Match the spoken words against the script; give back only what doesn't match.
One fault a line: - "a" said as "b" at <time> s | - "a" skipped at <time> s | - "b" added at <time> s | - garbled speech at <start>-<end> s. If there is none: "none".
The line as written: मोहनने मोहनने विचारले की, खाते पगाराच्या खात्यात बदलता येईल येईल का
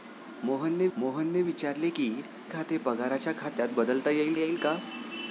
none